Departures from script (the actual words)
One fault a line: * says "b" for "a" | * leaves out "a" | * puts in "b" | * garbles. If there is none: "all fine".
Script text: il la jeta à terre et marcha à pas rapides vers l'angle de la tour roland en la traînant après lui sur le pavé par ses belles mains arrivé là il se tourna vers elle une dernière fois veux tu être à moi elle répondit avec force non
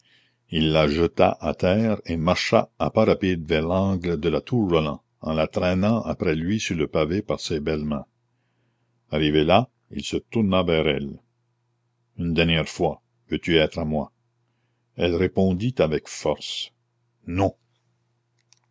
all fine